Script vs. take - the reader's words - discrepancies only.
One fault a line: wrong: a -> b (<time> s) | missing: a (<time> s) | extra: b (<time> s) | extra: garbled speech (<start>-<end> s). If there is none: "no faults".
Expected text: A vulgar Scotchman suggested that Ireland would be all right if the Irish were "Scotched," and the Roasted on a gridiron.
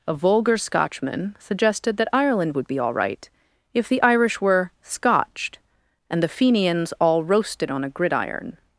extra: Fenians all (6.3 s)